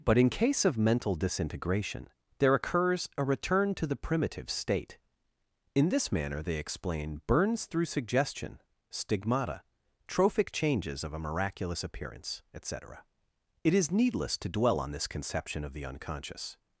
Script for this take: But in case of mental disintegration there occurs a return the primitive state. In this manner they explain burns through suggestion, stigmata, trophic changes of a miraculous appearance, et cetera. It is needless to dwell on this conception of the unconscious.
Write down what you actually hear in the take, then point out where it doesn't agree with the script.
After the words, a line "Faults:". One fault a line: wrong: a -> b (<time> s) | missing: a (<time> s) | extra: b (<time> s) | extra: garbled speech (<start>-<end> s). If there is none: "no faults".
But in case of mental disintegration there occurs a return to the primitive state. In this manner they explain burns through suggestion, stigmata, trophic changes of a miraculous appearance, et cetera. It is needless to dwell on this conception of the unconscious.
Faults:
extra: to (3.8 s)